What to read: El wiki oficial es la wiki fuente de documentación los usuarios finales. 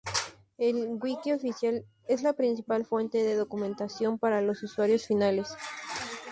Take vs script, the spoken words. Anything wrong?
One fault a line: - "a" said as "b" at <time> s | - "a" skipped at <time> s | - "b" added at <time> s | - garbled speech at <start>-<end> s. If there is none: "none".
- "wiki" said as "principal" at 2.3 s
- "para" added at 4.2 s